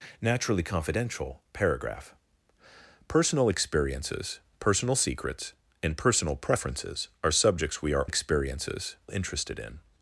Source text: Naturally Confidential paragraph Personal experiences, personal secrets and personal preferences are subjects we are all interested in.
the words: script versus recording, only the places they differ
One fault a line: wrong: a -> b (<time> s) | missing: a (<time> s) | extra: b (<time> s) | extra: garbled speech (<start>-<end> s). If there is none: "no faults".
wrong: all -> experiences (8.1 s)